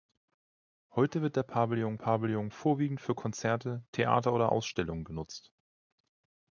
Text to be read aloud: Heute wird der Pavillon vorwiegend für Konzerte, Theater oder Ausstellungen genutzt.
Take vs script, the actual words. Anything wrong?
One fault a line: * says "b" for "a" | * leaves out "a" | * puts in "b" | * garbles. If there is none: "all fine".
* puts in "Pavillon"